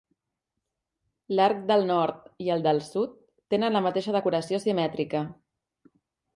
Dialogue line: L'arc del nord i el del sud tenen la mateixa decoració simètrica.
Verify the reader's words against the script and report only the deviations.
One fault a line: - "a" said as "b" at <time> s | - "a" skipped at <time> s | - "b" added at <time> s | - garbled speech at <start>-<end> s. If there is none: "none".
none